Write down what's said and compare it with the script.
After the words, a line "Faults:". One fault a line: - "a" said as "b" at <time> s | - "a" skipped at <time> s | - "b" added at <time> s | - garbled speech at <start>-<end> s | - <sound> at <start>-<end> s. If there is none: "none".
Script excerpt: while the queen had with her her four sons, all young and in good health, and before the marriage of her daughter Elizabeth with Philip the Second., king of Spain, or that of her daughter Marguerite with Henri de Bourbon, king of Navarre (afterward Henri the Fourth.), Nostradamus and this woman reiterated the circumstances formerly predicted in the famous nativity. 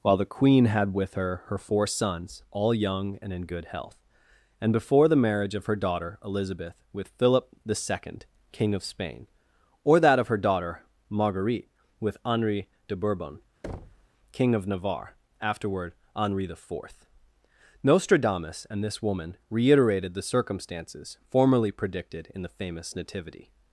while the queen had with her her four sons, all young and in good health, and before the marriage of her daughter Elizabeth with Philip the Second., king of Spain, or that of her daughter Marguerite with Henri de Bourbon, king of Navarre (afterward Henri the Fourth.), Nostradamus and this woman reiterated the circumstances formerly predicted in the famous nativity.
Faults:
- thud at 13.6-14.1 s